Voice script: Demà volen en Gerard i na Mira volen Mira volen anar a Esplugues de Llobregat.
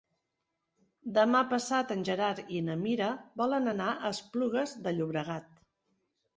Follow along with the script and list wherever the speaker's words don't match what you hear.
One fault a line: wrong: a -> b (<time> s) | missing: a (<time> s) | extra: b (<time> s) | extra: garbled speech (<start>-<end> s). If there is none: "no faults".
wrong: volen -> passat (1.5 s)
missing: Mira volen (3.7 s)